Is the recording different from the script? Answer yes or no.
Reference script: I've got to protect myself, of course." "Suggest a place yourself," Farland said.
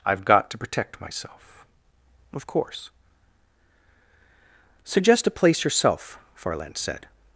no